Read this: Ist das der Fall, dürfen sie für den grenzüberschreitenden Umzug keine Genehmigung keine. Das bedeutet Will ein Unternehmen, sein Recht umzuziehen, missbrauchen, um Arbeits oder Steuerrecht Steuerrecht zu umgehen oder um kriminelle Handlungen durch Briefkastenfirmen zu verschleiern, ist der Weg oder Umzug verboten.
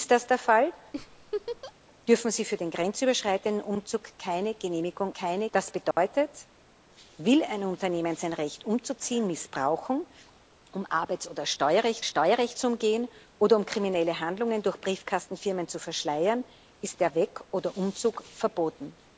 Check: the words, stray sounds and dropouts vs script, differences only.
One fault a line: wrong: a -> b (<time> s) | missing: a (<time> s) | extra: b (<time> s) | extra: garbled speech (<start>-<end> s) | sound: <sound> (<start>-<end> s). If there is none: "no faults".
sound: laugh (0.9-1.7 s)
sound: dropout (5.9-6.0 s)